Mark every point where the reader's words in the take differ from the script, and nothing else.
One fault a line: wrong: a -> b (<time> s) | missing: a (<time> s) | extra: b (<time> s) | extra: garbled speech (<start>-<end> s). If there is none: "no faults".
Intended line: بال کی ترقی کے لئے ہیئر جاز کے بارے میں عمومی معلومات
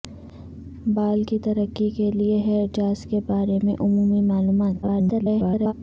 extra: garbled speech (4.8-5.7 s)